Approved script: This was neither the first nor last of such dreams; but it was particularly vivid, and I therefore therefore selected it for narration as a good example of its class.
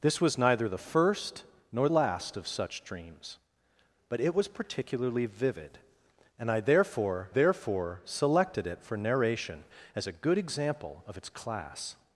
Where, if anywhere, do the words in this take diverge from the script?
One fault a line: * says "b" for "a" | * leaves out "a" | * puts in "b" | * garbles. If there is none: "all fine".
all fine